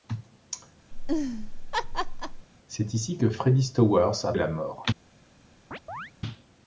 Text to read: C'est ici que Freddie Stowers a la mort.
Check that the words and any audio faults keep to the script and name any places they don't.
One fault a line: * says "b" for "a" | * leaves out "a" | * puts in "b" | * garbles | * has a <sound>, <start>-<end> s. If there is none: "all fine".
* has a laugh, 0.9-2.5 s
* has a chirp, 5.7-6.1 s